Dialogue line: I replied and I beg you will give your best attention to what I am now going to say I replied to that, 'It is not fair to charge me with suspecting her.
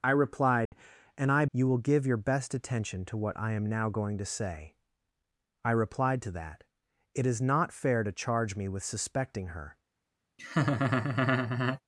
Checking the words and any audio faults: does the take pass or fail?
fail